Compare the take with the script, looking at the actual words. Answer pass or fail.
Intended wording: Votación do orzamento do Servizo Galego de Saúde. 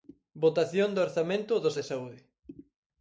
fail